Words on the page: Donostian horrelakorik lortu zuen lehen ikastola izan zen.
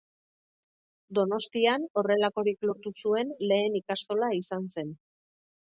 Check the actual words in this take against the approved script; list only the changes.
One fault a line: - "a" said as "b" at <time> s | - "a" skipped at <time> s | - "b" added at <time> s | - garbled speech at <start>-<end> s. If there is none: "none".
none